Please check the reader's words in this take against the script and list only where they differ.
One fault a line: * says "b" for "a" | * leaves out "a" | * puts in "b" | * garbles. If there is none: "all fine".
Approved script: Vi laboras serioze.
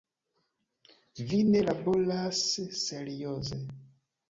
* puts in "ne"